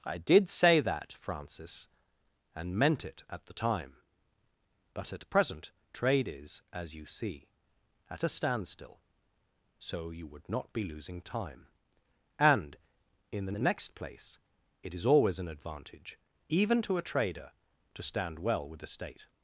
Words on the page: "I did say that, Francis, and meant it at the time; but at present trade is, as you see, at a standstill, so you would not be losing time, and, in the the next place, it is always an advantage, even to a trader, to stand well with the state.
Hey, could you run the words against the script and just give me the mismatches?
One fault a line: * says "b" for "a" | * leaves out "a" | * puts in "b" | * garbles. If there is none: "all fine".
all fine